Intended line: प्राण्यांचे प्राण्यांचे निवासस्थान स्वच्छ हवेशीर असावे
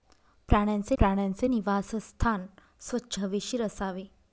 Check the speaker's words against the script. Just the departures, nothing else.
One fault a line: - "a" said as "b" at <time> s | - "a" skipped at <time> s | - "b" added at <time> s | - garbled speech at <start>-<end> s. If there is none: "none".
none